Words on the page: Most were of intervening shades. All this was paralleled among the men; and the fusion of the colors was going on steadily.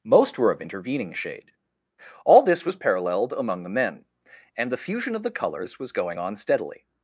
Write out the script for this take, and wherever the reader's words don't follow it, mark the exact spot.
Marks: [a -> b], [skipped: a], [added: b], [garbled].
Most were of intervening [shades. -> shade] All this was paralleled among the men; and the fusion of the colors was going on steadily.